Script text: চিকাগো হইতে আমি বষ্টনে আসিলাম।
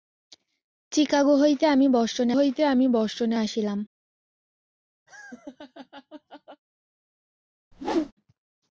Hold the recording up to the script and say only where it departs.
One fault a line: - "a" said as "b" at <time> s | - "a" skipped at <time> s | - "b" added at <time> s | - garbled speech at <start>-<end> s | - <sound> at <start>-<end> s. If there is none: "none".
- "হইতে আমি বষ্টনে" added at 2.3 s
- laugh at 5.1-6.6 s
- whoosh at 7.7-8.1 s